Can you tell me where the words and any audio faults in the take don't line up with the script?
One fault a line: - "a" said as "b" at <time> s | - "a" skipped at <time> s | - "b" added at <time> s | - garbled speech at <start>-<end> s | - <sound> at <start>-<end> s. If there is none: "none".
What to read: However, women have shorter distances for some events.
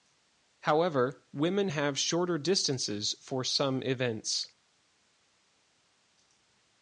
none